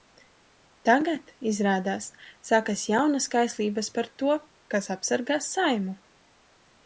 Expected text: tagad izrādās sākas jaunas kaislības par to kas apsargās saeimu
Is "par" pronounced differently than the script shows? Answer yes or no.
no